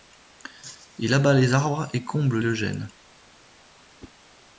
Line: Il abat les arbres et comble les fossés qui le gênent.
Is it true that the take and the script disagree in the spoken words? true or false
true